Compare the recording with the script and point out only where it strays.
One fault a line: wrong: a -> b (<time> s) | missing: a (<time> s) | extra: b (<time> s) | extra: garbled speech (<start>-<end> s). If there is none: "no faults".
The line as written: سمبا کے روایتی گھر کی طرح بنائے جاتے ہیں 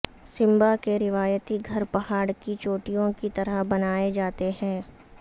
extra: پہاڑ کی چوٹیوں (1.9 s)